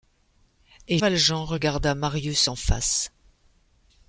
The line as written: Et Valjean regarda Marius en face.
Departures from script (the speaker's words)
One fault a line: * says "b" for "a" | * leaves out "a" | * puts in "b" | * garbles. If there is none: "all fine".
all fine